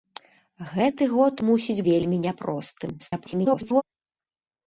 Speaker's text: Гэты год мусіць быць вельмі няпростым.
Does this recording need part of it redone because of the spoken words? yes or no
yes